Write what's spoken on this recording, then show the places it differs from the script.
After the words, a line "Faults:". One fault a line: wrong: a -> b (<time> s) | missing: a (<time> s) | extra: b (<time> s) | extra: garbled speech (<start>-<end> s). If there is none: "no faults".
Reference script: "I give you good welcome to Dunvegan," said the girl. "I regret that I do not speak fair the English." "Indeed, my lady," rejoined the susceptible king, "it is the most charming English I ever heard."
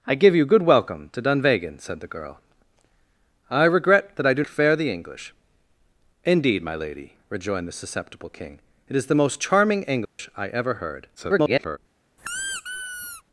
"I give you good welcome to Dunvegan," said the girl. "I regret that I do fair the English." "Indeed, my lady," rejoined the susceptible king, "it is the most charming English I ever heard." [garbled]
Faults:
missing: not speak (4.4 s)
extra: garbled speech (11.2-11.8 s)